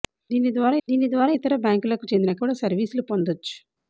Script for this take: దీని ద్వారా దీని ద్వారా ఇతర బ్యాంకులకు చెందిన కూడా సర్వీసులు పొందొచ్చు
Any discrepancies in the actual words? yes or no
no